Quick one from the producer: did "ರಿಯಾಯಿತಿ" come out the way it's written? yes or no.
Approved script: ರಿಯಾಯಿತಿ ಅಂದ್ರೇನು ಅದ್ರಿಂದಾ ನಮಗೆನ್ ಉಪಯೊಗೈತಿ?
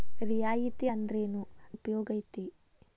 yes